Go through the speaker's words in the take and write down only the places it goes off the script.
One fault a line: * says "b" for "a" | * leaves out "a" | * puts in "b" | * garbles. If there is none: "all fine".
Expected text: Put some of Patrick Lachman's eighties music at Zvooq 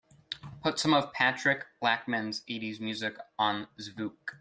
* says "on" for "at"